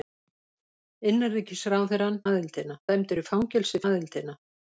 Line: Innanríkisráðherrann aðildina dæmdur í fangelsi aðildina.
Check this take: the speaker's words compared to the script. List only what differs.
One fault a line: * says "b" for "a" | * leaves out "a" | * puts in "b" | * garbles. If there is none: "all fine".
all fine